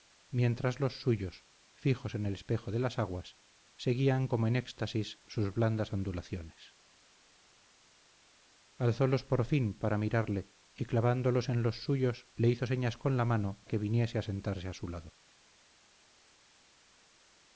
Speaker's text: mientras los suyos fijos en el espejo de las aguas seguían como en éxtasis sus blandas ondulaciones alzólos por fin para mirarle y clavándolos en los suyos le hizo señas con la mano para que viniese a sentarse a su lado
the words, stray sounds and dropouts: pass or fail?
fail